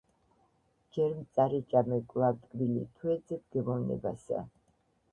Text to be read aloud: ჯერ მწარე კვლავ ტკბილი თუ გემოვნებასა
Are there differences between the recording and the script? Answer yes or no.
yes